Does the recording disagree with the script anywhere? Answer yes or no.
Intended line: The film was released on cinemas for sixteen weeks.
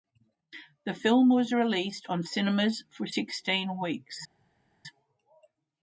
no